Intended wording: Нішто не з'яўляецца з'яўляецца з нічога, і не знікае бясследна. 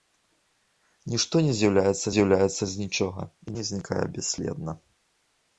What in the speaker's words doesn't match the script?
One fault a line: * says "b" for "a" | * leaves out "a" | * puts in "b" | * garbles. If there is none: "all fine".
all fine